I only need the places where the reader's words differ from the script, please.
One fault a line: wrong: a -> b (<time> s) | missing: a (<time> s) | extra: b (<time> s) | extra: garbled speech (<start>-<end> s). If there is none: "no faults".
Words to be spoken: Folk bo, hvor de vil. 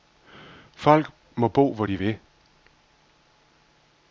extra: må (1.4 s)